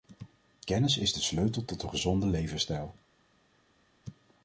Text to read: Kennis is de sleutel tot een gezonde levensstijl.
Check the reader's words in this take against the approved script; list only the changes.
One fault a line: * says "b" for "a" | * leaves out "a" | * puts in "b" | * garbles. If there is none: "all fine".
all fine